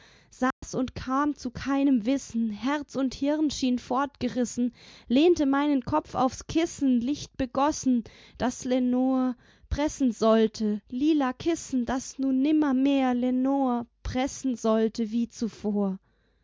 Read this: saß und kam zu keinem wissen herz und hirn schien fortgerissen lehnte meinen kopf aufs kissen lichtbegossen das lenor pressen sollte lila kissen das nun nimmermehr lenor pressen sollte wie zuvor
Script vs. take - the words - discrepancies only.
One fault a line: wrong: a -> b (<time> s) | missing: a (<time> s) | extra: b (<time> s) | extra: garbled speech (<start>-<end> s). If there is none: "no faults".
no faults